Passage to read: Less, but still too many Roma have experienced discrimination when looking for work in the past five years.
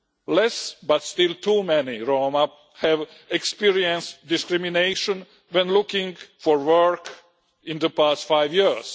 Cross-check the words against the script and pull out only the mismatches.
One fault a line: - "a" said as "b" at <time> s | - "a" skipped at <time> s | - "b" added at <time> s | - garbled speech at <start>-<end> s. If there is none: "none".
none